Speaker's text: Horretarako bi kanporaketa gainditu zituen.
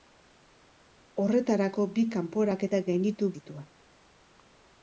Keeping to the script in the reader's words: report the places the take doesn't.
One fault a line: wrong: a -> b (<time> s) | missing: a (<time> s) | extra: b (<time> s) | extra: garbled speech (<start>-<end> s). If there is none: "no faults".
no faults